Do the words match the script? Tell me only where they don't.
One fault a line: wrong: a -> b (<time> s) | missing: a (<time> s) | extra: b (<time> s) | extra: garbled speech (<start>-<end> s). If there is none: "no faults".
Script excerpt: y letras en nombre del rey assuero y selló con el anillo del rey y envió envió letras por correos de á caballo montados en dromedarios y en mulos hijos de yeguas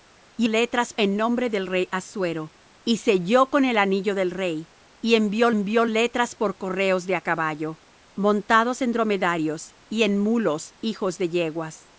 no faults